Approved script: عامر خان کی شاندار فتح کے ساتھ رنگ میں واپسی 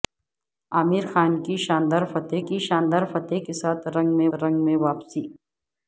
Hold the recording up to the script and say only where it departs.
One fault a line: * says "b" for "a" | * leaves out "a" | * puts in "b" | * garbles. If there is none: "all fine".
* puts in "کی شاندار فتح"
* puts in "رنگ میں"